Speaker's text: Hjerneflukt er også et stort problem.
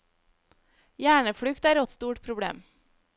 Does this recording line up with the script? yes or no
no